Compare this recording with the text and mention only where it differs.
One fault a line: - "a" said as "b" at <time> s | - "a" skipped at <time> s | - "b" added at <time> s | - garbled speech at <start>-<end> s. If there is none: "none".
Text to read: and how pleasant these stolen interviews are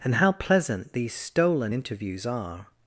none